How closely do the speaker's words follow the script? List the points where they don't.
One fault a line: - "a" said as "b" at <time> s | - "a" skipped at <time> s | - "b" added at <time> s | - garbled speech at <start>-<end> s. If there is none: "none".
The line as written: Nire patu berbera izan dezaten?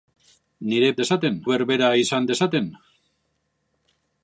- "patu" said as "dezaten" at 1.0 s